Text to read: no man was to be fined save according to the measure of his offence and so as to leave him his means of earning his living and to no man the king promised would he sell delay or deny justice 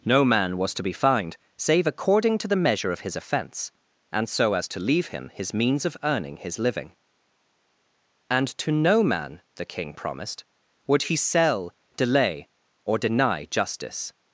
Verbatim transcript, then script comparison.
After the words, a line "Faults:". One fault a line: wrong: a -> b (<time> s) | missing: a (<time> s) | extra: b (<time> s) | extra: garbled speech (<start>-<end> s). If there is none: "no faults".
no man was to be fined save according to the measure of his offence and so as to leave him his means of earning his living and to no man the king promised would he sell delay or deny justice
Faults:
no faults